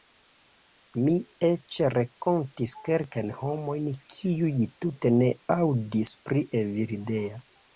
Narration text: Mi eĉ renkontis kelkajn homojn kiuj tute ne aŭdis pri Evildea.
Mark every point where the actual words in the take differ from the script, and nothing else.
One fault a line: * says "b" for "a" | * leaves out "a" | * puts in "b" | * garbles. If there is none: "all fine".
all fine